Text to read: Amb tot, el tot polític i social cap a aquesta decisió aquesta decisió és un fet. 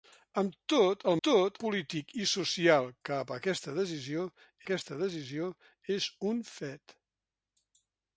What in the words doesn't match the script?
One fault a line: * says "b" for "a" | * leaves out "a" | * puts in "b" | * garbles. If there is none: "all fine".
all fine